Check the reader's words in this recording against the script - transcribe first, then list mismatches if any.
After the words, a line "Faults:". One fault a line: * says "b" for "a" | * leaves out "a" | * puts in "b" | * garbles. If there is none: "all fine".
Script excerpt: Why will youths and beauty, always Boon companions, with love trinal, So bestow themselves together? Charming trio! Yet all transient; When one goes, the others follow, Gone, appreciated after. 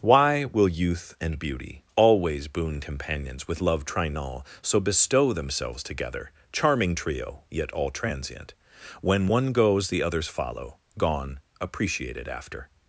Why will youth and beauty, always Boon companions, with love trinal, So bestow themselves together? Charming trio! Yet all transient; When one goes, the others follow, Gone, appreciated after.
Faults:
* says "youth" for "youths"